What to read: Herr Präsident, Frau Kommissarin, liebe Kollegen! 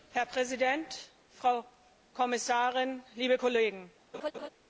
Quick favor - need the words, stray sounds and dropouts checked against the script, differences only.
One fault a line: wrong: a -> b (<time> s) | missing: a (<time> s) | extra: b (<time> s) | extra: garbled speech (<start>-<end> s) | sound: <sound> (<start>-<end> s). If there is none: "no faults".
sound: laugh (4.1-4.5 s)